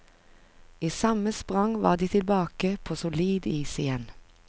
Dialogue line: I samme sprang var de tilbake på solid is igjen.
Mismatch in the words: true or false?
false